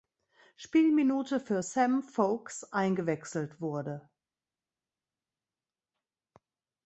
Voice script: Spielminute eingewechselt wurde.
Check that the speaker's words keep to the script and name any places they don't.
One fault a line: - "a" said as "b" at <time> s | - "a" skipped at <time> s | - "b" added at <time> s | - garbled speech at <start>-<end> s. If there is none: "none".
- "für Sam Vokes" added at 1.4 s